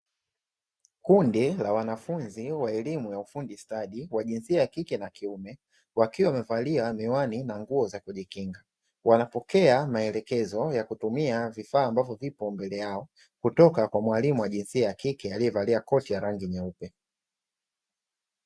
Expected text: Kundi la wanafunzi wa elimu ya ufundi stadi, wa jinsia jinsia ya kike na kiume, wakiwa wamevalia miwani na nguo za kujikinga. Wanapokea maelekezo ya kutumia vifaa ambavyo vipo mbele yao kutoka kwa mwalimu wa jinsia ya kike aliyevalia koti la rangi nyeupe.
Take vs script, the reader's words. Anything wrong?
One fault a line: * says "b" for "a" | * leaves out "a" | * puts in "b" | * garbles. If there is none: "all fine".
* leaves out "jinsia"